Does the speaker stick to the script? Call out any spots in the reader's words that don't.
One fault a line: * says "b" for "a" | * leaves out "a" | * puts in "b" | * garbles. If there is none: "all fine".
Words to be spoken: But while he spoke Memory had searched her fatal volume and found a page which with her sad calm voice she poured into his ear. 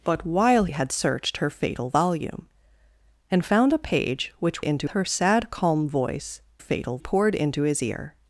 * leaves out "he spoke Memory"
* says "into" for "with"
* says "fatal" for "she"